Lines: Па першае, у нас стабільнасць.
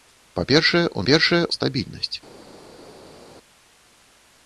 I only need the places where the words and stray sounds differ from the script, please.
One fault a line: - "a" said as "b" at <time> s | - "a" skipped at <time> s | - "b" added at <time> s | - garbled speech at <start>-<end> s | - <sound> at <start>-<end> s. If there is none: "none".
- "нас" said as "першае" at 1.1 s